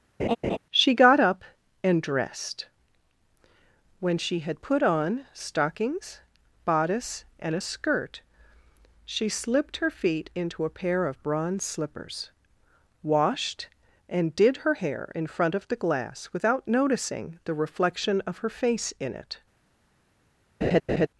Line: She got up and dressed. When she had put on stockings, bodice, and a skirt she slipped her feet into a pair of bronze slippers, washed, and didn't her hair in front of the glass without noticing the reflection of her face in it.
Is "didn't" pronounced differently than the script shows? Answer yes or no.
yes